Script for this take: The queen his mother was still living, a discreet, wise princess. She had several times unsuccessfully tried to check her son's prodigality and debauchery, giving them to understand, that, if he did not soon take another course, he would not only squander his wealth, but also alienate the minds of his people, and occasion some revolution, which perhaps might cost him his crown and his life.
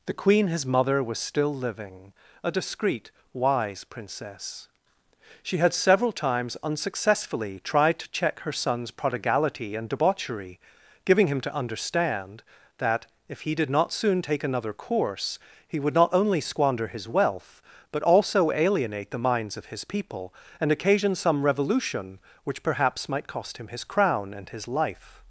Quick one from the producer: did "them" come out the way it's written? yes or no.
no